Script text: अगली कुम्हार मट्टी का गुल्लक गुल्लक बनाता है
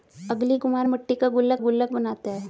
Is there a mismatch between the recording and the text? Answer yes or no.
no